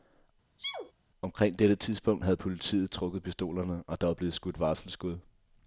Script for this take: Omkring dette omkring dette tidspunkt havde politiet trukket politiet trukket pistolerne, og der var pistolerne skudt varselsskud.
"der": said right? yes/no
yes